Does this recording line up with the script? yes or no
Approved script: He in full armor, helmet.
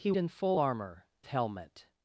yes